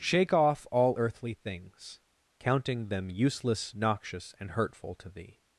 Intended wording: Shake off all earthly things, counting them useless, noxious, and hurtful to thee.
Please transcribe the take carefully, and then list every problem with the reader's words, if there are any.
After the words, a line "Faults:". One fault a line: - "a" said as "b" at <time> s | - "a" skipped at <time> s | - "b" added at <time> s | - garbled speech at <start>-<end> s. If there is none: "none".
Shake off all earthly things, counting them useless, noxious, and hurtful to thee.
Faults:
none